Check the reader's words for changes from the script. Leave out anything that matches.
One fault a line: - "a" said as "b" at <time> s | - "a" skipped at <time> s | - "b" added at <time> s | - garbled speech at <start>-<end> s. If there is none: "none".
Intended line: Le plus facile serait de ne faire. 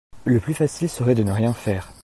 - "rien" added at 1.3 s